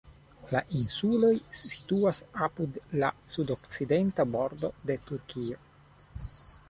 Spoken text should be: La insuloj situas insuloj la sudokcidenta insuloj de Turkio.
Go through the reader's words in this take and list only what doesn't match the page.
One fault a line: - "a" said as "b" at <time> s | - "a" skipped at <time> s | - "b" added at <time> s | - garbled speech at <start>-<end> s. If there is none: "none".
- "insuloj" said as "apud" at 2.5 s
- "insuloj" said as "bordo" at 4.4 s